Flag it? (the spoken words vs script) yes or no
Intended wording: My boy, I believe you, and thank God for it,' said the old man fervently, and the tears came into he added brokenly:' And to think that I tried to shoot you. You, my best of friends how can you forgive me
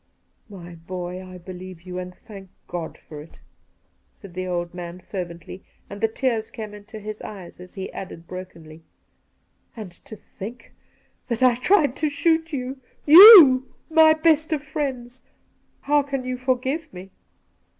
yes